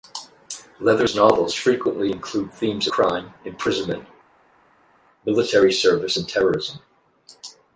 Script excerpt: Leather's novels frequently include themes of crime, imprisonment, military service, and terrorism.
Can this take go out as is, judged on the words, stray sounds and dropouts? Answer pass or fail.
fail